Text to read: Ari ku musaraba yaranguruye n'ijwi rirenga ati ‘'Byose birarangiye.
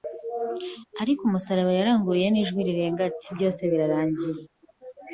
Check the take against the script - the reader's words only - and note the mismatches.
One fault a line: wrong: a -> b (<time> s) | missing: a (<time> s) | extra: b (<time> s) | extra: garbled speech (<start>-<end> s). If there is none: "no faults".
no faults